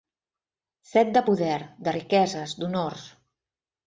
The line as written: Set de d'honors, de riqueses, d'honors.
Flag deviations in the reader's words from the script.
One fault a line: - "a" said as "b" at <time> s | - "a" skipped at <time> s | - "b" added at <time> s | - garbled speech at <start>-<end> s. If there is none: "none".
- "d'honors" said as "poder" at 1.3 s